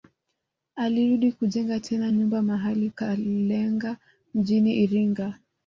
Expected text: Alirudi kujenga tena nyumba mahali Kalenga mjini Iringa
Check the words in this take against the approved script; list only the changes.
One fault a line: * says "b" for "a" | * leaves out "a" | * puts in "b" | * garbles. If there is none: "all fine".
all fine